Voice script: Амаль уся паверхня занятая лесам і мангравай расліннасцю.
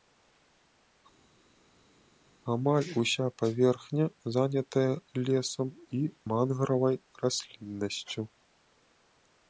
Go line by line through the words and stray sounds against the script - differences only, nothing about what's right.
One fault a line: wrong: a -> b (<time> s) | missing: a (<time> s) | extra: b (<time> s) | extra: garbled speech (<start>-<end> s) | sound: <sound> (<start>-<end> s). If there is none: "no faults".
no faults